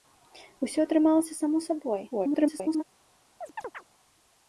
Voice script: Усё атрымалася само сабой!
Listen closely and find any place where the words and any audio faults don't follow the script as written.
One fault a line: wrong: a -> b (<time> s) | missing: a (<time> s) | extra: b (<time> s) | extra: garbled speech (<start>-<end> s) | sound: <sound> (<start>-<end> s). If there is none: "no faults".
extra: garbled speech (2.1-2.8 s)
sound: chirp (3.4-3.8 s)